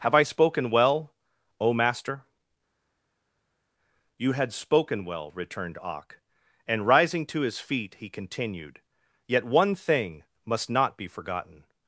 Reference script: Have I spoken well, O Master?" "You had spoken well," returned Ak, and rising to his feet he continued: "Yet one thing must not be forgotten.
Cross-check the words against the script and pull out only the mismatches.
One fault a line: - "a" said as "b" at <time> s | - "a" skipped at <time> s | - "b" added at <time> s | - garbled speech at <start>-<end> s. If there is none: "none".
none